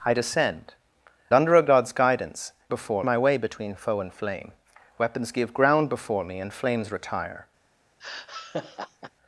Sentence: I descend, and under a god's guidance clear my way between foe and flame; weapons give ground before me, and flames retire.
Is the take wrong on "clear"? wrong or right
wrong